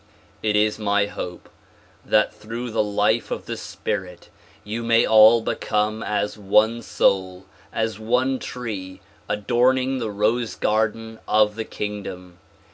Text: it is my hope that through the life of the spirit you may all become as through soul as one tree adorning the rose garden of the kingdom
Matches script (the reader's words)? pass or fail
fail